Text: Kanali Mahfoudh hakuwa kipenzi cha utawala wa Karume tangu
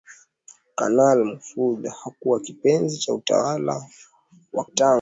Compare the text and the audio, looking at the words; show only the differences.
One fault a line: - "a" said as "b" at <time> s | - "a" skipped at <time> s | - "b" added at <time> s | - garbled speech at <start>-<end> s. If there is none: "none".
- "Karume" skipped at 4.7 s